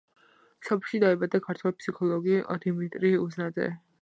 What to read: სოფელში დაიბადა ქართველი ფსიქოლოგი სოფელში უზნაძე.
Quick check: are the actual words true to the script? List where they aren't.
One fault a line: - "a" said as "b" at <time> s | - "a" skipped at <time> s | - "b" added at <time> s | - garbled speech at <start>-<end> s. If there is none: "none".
- "სოფელში" said as "დიმიტრი" at 2.6 s